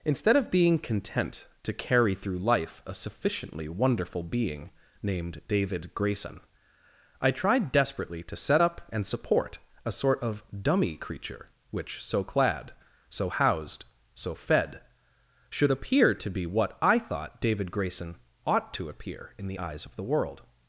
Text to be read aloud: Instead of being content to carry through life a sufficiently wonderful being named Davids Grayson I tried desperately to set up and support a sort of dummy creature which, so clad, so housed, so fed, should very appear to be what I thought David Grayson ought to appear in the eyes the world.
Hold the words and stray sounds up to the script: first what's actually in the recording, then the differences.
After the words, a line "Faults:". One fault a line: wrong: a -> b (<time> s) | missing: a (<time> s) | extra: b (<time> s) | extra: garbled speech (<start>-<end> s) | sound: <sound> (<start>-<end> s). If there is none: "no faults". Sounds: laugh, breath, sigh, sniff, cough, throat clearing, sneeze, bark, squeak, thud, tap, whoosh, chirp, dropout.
Instead of being content to carry through life a sufficiently wonderful being named David Grayson I tried desperately to set up and support a sort of dummy creature which, so clad, so housed, so fed, should appear to be what I thought David Grayson ought to appear in the eyes of the world.
Faults:
wrong: Davids -> David (5.5 s)
missing: very (15.7 s)
extra: of (19.9 s)